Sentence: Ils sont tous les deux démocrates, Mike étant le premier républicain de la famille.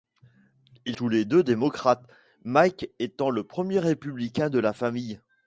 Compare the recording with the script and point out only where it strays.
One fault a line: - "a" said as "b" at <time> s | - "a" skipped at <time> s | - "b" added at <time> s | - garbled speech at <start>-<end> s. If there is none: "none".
- "sont" skipped at 0.9 s